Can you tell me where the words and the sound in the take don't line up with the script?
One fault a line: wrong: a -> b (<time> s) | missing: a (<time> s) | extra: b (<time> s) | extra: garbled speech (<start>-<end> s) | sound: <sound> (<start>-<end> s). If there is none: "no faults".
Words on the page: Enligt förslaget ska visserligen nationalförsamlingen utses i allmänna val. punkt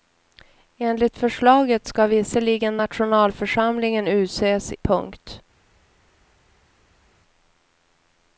missing: i allmänna val (4.7 s)